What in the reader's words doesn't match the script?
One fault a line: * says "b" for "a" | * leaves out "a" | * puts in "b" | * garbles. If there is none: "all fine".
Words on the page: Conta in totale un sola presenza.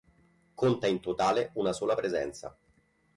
* says "una" for "un"